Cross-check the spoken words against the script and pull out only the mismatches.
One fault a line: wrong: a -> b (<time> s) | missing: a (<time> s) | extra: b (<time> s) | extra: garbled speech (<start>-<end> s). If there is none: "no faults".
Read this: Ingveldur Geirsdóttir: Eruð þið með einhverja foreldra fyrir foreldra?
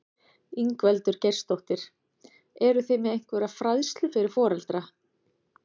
wrong: foreldra -> fræðslu (3.6 s)